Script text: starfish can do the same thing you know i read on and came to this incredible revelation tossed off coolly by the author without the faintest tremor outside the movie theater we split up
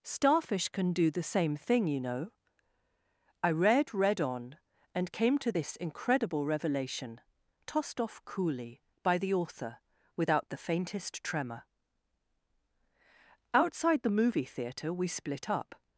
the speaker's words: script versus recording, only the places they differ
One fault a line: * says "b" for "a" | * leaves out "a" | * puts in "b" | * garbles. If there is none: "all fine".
* puts in "read"